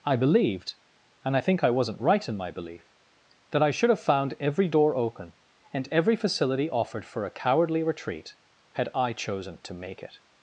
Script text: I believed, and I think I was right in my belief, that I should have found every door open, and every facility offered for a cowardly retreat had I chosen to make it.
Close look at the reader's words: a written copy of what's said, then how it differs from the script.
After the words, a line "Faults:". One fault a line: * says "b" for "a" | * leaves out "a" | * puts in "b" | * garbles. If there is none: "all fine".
I believed, and I think I wasn't right in my belief, that I should have found every door open, and every facility offered for a cowardly retreat had I chosen to make it.
Faults:
* says "wasn't" for "was"